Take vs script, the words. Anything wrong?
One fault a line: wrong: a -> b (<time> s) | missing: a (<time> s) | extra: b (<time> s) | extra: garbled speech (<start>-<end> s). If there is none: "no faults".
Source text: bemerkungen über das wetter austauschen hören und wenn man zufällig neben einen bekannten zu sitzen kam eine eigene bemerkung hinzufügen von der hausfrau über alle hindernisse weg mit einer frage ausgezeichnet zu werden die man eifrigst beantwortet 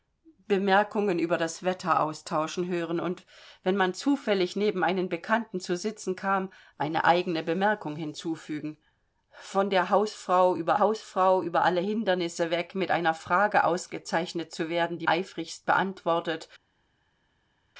extra: hausfrau über (10.8 s)
missing: man (15.1 s)